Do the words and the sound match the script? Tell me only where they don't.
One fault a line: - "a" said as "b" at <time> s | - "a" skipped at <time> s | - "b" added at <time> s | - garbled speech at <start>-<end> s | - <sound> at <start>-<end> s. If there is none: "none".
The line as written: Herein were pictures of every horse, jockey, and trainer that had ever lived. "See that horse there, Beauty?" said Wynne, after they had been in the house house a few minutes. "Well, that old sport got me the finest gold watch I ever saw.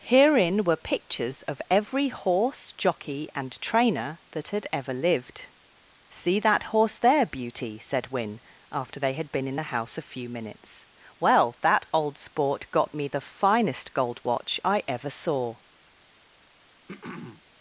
- "house" skipped at 10.0 s
- throat clearing at 16.9-17.4 s